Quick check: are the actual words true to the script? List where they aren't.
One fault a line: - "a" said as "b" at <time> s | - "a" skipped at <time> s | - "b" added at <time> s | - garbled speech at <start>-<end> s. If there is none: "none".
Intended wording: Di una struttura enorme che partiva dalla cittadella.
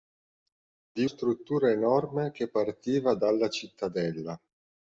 - "una" skipped at 1.1 s